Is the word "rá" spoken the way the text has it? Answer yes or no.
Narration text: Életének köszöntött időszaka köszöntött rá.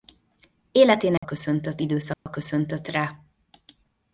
yes